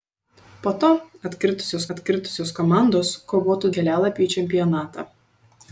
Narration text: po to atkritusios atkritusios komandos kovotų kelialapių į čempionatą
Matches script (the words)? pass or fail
pass